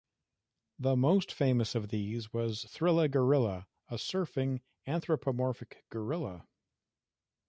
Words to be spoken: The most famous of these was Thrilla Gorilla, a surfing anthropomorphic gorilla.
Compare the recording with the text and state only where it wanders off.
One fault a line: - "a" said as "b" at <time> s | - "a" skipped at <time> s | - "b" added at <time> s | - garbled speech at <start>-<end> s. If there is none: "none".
none